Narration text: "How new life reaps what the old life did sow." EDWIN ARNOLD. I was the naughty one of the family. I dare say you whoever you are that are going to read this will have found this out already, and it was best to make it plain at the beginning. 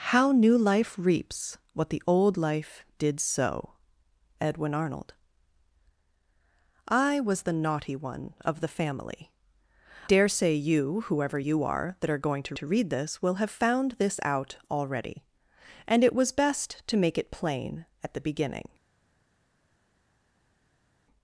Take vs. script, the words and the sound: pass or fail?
fail